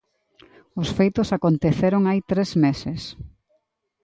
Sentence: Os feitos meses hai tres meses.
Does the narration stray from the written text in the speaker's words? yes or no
yes